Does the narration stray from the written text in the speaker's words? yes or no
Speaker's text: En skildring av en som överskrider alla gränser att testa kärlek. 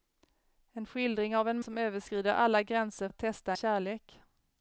no